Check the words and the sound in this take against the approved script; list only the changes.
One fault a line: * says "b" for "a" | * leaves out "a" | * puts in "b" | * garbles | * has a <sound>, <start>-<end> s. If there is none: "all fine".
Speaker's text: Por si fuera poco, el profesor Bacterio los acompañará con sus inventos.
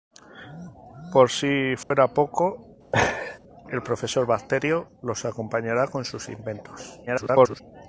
* has a dropout, 1.8-1.9 s
* has a laugh, 2.9-3.4 s
* garbles